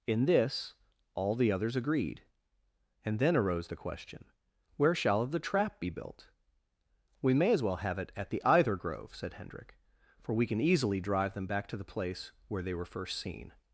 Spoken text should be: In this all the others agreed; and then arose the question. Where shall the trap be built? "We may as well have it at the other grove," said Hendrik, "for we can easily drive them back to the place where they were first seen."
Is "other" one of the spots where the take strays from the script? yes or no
yes